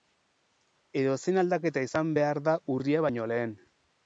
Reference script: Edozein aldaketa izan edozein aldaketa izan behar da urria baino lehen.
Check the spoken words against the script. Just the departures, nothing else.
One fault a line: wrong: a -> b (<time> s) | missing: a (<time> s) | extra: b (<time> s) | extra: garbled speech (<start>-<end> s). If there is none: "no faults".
missing: edozein aldaketa izan (2.1 s)